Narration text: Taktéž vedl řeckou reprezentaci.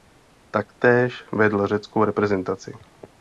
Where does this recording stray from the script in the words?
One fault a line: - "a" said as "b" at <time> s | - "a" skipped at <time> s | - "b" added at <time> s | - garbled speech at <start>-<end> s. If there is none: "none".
none